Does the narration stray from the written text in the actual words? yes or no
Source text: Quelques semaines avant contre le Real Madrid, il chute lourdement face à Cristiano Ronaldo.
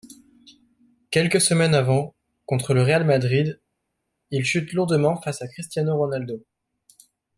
no